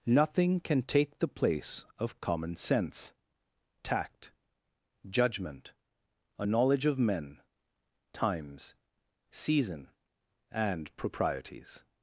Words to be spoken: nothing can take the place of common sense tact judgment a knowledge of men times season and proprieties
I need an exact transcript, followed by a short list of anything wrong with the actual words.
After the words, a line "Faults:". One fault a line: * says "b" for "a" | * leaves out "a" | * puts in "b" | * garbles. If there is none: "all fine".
nothing can take the place of common sense tact judgment a knowledge of men times season and proprieties
Faults:
all fine